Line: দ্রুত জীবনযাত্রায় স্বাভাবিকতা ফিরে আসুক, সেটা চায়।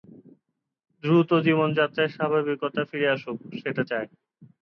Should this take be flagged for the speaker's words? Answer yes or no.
no